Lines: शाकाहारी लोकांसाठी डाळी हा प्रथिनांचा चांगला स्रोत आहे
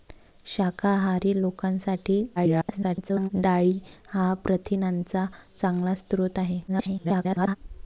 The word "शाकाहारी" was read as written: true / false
true